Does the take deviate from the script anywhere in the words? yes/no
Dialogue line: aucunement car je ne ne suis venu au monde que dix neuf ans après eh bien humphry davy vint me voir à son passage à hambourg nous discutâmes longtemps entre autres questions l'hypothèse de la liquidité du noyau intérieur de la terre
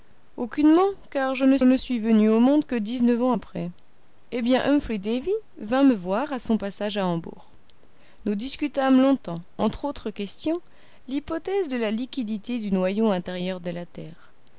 no